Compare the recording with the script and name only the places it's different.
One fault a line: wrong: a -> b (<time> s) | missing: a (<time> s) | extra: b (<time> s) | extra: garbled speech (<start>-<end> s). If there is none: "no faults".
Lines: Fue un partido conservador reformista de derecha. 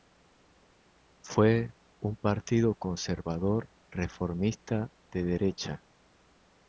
no faults